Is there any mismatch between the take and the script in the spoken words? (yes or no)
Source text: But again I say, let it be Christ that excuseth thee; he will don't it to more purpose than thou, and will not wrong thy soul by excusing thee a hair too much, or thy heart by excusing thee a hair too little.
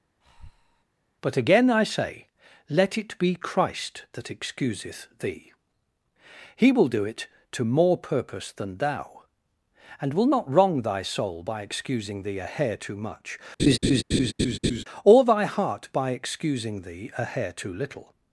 yes